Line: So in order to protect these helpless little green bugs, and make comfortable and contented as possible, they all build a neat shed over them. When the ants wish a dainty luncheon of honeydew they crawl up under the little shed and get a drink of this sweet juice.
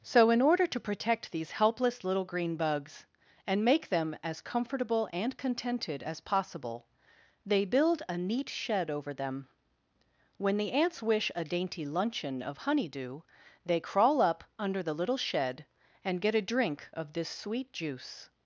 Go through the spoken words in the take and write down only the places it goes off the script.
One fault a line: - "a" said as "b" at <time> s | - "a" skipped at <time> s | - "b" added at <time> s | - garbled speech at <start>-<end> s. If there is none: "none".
- "them as" added at 3.9 s
- "all" skipped at 7.7 s